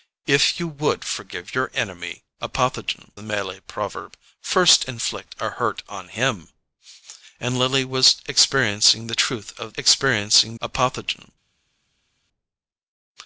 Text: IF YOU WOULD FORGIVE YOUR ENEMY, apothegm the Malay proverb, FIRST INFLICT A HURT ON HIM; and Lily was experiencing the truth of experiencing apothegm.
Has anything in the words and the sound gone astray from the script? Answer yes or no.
no